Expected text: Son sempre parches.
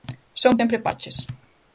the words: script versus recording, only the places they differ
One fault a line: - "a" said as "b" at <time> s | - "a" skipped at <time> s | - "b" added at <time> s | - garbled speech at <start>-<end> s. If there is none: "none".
none